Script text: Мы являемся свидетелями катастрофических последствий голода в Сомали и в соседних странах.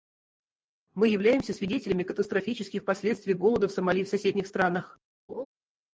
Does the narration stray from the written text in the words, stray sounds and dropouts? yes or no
yes